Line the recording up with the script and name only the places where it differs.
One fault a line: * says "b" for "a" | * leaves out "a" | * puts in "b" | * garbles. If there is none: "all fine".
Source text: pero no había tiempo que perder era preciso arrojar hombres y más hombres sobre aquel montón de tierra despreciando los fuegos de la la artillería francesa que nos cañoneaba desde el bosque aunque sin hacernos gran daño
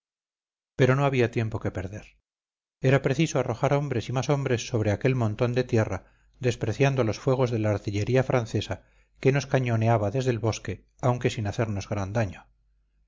* leaves out "la"